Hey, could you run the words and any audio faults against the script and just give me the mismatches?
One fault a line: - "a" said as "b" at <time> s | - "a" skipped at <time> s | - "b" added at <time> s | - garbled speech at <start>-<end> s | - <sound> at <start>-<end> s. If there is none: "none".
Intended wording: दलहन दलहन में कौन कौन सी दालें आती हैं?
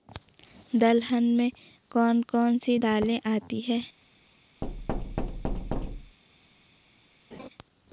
- "दलहन" skipped at 1.2 s
- thud at 4.6-6.2 s
- laugh at 7.3-7.5 s